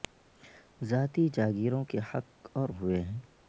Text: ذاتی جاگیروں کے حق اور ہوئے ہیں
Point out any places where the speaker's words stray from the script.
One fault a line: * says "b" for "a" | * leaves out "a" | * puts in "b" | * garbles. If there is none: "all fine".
all fine